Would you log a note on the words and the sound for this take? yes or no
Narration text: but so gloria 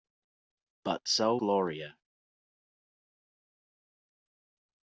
no